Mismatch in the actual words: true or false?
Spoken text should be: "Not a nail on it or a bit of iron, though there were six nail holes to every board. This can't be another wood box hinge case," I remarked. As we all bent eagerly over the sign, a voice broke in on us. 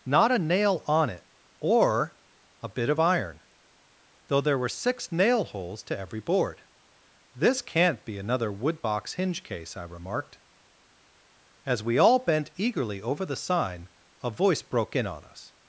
false